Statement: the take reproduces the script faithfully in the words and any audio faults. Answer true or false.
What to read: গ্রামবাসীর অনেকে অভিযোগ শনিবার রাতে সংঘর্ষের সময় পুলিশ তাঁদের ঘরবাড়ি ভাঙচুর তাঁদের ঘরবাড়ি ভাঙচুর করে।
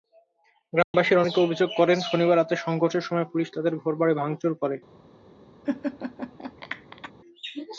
false